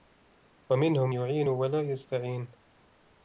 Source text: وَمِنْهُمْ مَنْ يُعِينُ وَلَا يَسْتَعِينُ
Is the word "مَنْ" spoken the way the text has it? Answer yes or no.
no